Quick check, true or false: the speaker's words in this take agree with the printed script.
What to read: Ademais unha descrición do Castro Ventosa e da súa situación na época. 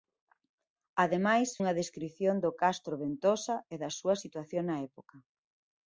true